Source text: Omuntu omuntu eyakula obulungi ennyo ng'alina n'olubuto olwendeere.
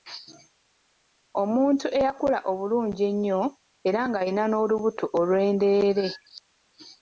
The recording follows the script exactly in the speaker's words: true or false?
false